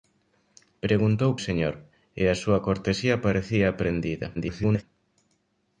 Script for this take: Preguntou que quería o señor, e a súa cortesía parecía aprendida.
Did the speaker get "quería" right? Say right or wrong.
wrong